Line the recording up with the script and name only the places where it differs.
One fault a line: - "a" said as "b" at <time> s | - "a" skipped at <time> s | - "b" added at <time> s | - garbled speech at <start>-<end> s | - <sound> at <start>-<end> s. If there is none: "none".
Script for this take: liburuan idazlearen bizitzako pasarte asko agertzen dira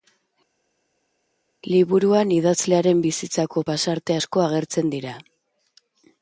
none